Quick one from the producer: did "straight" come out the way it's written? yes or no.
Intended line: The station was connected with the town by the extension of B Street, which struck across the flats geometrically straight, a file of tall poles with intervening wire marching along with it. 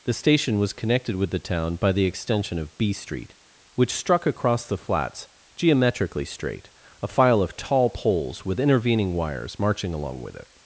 yes